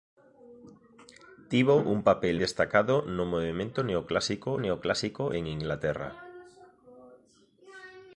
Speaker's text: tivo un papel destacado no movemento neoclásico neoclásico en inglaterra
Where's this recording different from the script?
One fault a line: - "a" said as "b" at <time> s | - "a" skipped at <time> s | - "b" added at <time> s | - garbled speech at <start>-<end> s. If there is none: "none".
none